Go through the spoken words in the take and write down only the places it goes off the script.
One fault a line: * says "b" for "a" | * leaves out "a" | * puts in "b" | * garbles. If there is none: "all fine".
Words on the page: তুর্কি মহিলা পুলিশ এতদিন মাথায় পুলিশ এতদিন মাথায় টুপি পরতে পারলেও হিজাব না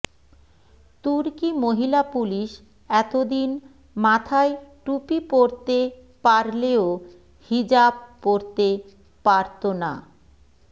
* leaves out "পুলিশ এতদিন মাথায়"
* puts in "পরতে পারত"